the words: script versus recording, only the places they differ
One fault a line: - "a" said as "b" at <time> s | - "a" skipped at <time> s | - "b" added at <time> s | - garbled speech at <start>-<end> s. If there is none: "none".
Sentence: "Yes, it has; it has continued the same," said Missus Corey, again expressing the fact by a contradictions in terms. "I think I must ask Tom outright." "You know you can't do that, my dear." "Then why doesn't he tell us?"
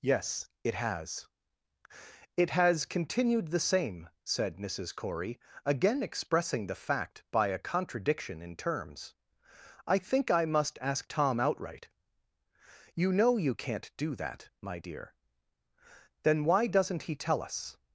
- "contradictions" said as "contradiction" at 7.6 s